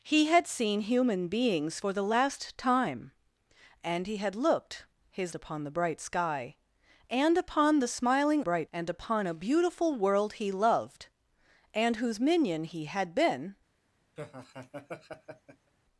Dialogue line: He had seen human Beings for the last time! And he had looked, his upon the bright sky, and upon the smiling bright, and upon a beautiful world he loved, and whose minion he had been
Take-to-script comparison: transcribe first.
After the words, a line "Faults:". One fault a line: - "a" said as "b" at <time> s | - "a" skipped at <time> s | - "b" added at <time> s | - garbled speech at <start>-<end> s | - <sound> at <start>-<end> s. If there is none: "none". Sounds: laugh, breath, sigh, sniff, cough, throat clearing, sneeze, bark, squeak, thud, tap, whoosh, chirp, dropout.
He had seen human Beings for the last time! And he had looked, his upon the bright sky, and upon the smiling bright, and upon a beautiful world he loved, and whose minion he had been
Faults:
- laugh at 14.2-15.7 s